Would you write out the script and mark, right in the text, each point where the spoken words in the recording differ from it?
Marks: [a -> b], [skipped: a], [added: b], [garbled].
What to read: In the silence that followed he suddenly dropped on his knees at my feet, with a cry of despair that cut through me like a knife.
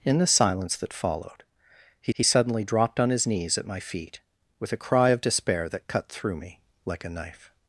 In the silence that followed he [added: he] suddenly dropped on his knees at my feet, with a cry of despair that cut through me like a knife.